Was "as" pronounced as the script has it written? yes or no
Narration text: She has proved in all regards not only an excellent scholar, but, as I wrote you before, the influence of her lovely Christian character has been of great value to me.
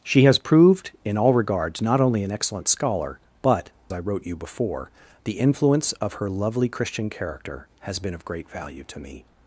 no